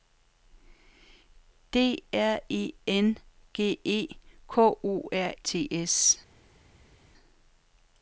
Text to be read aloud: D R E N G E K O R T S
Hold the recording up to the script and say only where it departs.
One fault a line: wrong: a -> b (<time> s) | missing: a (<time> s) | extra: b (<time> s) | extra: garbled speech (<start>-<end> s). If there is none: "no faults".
no faults